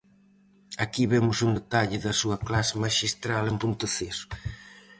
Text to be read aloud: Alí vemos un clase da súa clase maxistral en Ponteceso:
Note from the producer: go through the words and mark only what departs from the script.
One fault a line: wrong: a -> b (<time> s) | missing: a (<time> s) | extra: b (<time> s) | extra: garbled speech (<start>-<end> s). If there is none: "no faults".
wrong: Alí -> Aquí (0.8 s)
wrong: clase -> detalle (1.6 s)